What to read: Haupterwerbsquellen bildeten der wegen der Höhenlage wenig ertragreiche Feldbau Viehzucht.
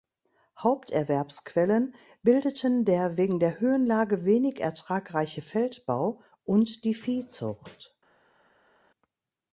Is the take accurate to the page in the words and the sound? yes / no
no